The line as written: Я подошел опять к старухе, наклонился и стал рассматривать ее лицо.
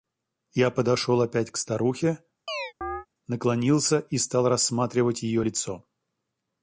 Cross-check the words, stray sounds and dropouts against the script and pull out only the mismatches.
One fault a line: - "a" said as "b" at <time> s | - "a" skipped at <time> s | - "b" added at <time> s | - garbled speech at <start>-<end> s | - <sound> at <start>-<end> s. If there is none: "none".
- chirp at 2.5-3.1 s